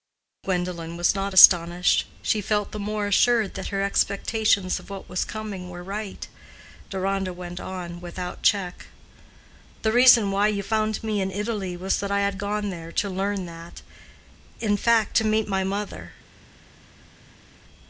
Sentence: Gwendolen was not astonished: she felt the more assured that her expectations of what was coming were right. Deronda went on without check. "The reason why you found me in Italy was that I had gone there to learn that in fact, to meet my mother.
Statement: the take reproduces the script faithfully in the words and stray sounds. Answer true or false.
true